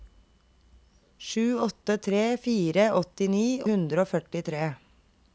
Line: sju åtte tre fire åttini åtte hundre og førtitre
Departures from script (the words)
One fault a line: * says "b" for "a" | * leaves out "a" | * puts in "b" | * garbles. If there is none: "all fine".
* leaves out "åtte"